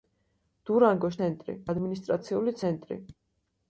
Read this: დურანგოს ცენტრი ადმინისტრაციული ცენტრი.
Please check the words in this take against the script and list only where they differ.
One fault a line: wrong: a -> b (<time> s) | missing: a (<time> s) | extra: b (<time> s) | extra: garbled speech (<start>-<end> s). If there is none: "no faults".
no faults